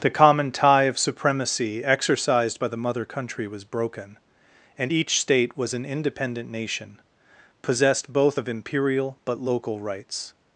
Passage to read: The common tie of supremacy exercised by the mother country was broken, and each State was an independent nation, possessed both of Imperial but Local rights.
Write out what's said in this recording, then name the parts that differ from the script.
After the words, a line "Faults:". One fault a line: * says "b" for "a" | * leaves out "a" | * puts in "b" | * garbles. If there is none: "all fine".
The common tie of supremacy exercised by the mother country was broken, and each State was an independent nation, possessed both of Imperial but Local rights.
Faults:
all fine